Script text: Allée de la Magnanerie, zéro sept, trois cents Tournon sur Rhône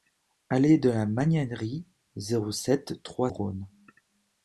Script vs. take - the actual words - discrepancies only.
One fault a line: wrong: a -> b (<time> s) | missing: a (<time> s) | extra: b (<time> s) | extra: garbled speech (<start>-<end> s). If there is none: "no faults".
missing: cents Tournon sur (3.3 s)